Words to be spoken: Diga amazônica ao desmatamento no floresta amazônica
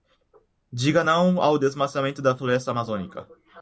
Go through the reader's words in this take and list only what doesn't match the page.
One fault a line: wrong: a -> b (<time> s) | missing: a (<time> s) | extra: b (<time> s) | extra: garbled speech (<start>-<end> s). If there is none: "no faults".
wrong: amazônica -> não (1.0 s)
wrong: no -> da (2.2 s)